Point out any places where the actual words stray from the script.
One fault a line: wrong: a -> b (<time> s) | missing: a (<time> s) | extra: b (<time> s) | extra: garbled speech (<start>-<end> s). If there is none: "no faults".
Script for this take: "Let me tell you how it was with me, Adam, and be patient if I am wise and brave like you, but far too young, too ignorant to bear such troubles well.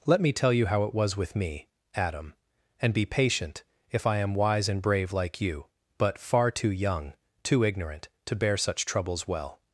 no faults